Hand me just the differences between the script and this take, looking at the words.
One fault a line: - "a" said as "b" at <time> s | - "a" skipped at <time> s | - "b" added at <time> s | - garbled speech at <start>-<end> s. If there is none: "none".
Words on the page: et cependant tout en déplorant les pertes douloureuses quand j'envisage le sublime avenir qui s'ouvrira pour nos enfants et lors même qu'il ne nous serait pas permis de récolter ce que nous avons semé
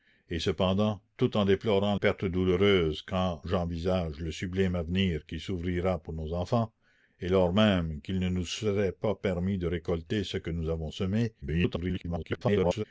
- "les" skipped at 1.9 s
- garbled speech at 11.4-12.8 s